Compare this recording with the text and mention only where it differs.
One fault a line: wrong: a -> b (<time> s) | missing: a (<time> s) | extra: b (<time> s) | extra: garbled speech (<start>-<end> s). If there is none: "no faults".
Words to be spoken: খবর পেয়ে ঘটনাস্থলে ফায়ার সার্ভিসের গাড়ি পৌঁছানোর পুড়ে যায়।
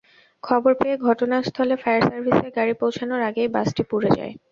extra: আগেই বাসটি (3.3 s)